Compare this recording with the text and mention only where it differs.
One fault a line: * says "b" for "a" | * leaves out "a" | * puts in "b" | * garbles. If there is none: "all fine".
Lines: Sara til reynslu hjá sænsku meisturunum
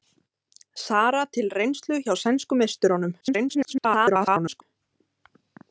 * garbles